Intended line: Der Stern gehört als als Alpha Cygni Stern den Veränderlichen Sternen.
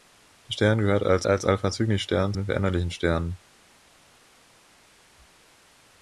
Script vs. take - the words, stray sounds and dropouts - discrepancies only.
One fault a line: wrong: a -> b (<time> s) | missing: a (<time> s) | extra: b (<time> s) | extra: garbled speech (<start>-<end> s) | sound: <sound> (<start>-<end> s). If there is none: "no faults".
no faults